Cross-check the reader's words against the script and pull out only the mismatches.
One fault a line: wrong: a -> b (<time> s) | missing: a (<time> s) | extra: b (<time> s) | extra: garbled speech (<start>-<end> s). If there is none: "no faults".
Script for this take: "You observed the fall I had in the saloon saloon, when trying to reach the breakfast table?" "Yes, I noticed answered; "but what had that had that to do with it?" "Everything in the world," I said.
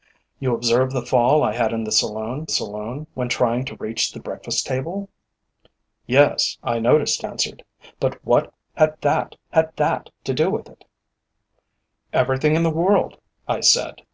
no faults